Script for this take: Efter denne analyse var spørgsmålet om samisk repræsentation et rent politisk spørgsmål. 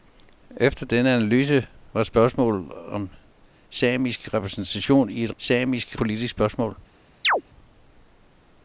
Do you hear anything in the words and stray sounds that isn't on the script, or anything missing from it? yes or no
yes